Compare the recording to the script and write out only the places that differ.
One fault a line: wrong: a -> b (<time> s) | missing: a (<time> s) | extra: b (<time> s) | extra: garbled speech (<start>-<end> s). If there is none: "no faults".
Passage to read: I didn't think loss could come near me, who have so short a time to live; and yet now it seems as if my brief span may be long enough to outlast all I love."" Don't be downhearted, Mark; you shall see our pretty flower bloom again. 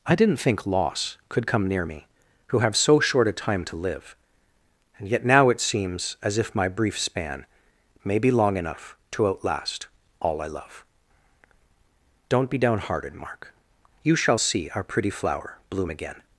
no faults